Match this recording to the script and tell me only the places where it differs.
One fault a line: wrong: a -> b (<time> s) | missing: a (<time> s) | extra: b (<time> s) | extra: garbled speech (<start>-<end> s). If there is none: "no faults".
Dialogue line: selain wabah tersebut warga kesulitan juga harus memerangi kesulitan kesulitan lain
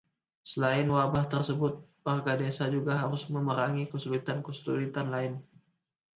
wrong: kesulitan -> desa (2.4 s)